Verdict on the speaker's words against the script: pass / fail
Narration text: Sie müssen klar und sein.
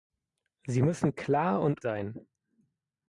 pass